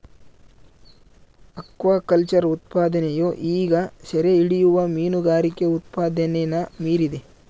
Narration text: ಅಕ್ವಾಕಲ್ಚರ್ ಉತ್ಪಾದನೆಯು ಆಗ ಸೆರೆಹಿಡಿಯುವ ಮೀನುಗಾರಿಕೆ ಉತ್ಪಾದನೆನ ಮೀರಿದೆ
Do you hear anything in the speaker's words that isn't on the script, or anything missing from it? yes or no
yes